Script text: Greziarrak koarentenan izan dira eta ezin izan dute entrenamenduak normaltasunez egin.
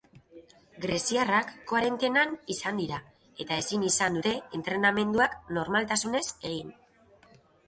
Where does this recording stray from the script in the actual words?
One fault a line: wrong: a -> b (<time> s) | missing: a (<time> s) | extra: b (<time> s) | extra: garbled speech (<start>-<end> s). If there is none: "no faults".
no faults